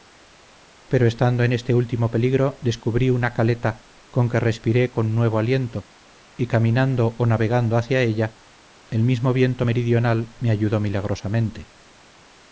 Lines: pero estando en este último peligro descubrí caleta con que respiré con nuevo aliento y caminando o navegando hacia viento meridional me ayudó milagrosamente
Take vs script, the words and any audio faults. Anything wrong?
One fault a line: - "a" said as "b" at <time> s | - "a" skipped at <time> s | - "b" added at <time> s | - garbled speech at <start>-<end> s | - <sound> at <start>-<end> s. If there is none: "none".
- "una" added at 3.1 s
- "ella el mismo" added at 8.0 s